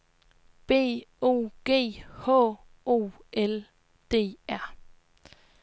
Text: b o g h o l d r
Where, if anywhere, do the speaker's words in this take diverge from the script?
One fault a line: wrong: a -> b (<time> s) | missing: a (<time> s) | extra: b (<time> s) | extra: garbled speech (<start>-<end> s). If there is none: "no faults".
no faults